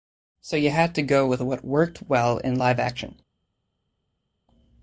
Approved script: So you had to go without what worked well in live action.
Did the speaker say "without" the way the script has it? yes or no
no